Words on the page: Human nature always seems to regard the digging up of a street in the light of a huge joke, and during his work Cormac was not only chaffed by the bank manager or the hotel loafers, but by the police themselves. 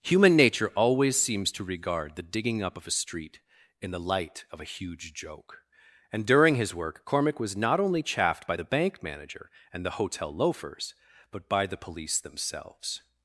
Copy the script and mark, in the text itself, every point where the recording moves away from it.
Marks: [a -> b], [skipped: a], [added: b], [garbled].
Human nature always seems to regard the digging up of a street in the light of a huge joke, and during his work Cormac was not only chaffed by the bank manager [or -> and] the hotel loafers, but by the police themselves.